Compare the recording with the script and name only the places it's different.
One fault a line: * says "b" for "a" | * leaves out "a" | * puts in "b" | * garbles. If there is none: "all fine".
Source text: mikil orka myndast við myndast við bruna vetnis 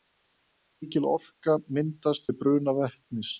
* leaves out "myndast við"